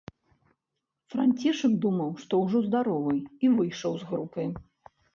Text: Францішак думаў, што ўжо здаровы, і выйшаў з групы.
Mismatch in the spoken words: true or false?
false